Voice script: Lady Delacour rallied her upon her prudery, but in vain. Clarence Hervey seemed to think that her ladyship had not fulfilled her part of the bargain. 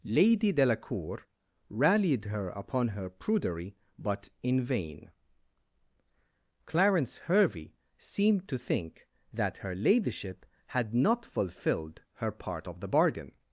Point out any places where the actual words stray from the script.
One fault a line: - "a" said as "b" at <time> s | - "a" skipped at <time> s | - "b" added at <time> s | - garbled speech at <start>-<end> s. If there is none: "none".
none